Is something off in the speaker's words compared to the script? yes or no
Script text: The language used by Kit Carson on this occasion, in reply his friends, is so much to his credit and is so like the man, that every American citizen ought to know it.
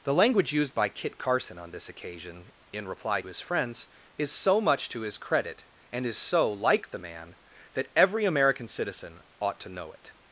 no